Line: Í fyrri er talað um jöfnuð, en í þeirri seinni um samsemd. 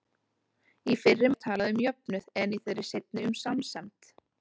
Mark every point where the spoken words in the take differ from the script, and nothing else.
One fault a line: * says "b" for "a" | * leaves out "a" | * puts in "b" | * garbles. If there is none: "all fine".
all fine